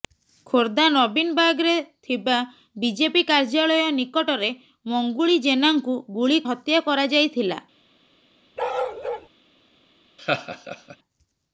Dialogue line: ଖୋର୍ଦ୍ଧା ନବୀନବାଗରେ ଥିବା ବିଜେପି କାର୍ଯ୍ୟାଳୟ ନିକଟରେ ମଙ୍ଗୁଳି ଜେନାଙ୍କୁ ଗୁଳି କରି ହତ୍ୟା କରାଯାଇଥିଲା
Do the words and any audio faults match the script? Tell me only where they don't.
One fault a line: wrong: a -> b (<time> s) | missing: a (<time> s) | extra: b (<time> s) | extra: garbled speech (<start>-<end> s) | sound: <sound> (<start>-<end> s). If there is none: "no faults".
missing: କରି (6.4 s)
sound: bark (8.6-9.3 s)
sound: laugh (10.2-11.0 s)